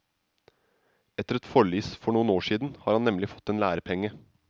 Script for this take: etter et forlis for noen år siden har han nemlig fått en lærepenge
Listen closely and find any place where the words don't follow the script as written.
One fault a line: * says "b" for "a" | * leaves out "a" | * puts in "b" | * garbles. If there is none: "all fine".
all fine